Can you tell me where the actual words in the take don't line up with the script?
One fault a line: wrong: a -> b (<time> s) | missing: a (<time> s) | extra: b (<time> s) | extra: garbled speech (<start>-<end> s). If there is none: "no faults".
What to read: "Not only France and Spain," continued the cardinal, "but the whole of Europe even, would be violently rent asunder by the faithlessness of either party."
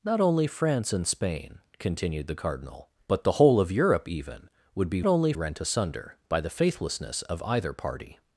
wrong: violently -> only (5.0 s)